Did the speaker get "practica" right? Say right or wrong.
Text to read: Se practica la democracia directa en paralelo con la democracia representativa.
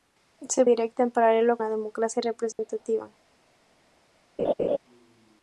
wrong